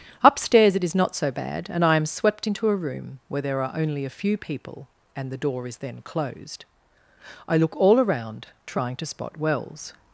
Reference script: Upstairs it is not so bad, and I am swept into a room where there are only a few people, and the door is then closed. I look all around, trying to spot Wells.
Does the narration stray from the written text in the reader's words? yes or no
no